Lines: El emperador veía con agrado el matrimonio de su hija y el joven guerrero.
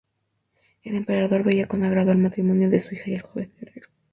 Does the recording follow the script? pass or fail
pass